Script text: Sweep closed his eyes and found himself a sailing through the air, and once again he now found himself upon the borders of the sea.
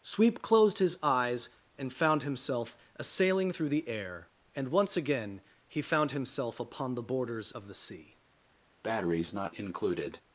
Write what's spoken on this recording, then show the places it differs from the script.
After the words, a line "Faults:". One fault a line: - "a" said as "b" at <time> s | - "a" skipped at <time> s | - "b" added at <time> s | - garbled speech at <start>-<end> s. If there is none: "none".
Sweep closed his eyes and found himself a sailing through the air, and once again he found himself upon the borders of the sea.
Faults:
- "now" skipped at 5.8 s